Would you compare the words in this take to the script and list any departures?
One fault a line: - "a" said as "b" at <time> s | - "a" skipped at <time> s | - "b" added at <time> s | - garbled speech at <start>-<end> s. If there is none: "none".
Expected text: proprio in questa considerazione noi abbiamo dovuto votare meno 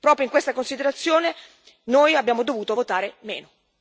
none